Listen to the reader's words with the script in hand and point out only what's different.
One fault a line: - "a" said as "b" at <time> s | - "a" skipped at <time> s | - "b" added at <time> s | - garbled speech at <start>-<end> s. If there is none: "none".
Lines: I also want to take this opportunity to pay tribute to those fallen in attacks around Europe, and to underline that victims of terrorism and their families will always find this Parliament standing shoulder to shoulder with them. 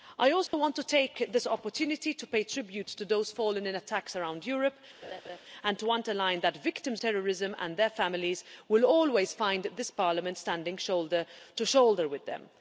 - "of" skipped at 7.0 s